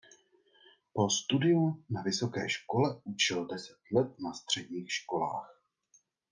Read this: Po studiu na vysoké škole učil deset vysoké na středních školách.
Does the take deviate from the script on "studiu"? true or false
false